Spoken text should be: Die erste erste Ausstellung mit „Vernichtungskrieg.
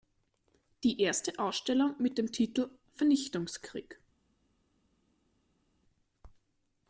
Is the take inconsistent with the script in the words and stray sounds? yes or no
yes